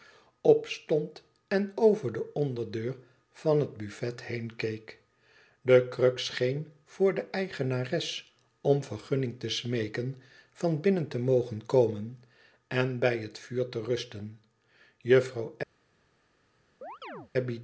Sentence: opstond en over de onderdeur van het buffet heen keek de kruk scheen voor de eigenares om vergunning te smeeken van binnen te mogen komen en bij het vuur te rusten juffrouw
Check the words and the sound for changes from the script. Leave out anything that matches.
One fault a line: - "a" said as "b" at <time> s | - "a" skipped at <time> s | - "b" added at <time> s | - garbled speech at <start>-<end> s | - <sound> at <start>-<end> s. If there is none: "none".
- chirp at 16.8-17.3 s